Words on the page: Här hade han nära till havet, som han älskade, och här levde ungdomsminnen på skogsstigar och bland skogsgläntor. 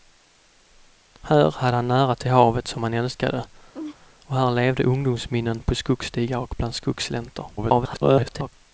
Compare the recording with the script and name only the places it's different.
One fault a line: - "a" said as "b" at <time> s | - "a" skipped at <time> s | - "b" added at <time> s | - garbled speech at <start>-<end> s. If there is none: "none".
- garbled speech at 7.6-8.5 s